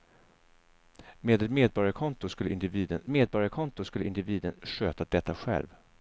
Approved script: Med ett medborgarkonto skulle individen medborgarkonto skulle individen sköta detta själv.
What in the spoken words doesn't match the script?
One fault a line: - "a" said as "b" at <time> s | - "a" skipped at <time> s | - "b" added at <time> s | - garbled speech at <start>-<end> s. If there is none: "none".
none